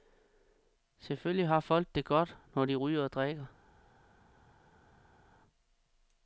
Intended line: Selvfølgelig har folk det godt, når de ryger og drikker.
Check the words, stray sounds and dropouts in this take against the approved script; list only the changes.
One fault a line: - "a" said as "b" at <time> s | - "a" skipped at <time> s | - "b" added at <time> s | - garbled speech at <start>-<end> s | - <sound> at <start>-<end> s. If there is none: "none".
none